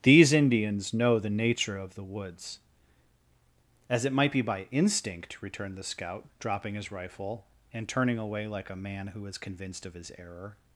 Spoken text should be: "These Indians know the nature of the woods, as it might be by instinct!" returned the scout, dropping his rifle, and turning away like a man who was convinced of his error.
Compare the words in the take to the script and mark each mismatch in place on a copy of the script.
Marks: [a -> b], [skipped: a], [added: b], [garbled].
"These Indians know the nature of the woods, as it might be by instinct!" returned the scout, dropping his rifle, and turning away like a man who [was -> is] convinced of his error.